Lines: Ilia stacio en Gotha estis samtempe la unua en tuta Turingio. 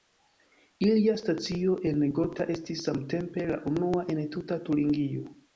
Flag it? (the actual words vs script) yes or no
no